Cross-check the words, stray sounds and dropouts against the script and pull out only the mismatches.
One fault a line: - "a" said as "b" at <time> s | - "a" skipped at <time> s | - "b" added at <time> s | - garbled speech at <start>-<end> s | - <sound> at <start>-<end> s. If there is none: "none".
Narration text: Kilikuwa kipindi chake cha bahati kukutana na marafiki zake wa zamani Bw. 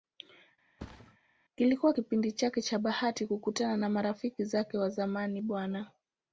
- thud at 0.8-1.2 s